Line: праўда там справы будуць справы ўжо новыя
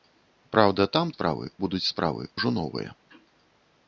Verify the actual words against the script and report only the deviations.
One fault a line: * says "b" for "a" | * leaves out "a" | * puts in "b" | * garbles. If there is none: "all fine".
all fine